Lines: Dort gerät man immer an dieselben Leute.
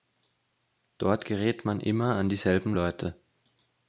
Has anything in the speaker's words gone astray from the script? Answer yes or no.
no